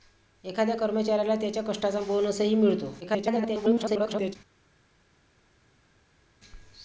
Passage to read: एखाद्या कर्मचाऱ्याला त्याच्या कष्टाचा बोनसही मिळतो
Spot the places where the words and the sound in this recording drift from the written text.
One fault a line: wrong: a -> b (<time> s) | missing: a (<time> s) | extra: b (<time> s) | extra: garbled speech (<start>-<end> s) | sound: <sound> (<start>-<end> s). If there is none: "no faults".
extra: garbled speech (3.0-4.4 s)